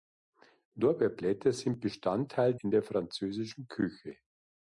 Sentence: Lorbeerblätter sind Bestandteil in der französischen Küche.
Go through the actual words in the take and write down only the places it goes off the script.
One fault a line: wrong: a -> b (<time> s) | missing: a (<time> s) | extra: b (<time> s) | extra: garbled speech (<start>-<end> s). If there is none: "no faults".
no faults